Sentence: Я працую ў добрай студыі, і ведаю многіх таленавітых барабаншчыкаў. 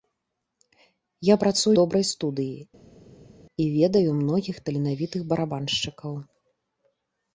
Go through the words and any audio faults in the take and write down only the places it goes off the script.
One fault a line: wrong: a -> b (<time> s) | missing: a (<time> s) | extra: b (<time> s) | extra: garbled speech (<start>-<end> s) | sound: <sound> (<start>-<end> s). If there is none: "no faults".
missing: ў (1.7 s)